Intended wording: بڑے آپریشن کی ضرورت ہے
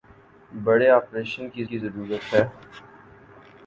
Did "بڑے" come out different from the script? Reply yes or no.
no